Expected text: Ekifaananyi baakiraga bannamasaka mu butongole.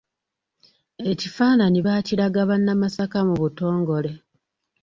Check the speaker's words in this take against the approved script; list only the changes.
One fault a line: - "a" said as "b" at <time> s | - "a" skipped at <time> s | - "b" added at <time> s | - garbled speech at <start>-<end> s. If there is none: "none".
none